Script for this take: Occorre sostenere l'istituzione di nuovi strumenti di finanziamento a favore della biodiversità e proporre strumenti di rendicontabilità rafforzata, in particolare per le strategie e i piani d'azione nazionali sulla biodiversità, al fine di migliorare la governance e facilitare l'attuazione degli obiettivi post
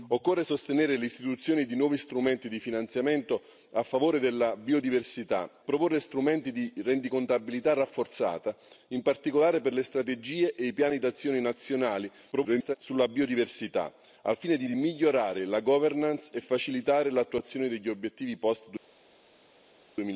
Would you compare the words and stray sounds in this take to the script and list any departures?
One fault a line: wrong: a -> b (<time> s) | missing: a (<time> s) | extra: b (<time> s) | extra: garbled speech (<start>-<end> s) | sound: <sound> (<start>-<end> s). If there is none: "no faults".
missing: e (5.6 s)
extra: garbled speech (12.3-12.8 s)
extra: di (14.6 s)